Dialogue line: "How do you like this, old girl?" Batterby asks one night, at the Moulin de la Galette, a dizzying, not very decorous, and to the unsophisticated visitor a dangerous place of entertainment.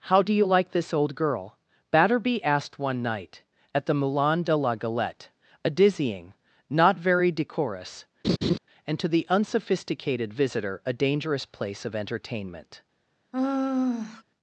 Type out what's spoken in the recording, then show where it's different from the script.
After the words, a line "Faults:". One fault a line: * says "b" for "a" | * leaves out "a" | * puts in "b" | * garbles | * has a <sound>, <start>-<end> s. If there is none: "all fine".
"How do you like this, old girl?" Batterby asked one night, at the Moulin de la Galette, a dizzying, not very decorous, and to the unsophisticated visitor a dangerous place of entertainment.
Faults:
* says "asked" for "asks"
* has a laugh, 8.2-8.6 s
* has a sigh, 13.3-14.2 s